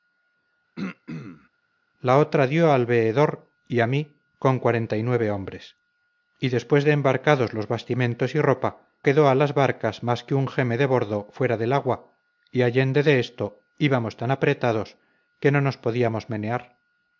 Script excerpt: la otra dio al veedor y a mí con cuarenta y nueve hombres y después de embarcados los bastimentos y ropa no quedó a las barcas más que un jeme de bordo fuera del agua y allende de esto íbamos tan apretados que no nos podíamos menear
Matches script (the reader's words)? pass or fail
fail